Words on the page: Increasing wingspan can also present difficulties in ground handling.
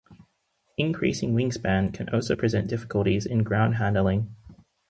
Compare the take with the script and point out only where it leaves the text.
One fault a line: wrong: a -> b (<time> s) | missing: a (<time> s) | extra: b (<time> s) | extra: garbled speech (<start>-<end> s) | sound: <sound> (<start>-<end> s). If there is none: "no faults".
no faults